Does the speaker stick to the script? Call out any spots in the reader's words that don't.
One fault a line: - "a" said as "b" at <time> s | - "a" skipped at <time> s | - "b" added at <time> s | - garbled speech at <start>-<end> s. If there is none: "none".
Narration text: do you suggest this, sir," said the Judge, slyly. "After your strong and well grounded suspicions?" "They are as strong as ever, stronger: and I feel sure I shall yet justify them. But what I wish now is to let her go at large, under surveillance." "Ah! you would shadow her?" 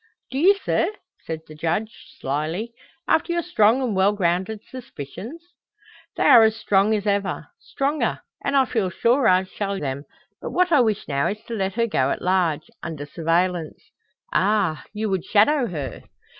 - "suggest this" skipped at 0.6 s
- "yet justify" skipped at 9.8 s